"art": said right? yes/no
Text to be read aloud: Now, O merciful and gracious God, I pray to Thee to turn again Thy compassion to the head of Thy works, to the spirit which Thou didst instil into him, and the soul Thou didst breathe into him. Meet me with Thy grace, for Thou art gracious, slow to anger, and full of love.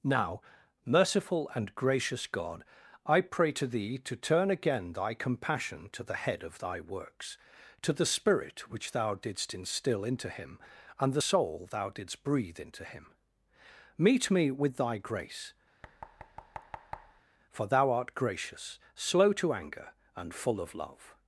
yes